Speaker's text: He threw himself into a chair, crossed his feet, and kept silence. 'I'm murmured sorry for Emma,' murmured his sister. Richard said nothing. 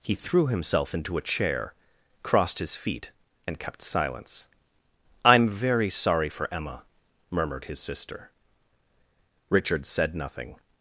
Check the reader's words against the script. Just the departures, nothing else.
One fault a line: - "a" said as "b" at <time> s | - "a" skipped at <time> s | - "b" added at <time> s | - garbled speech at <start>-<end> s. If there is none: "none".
- "murmured" said as "very" at 5.5 s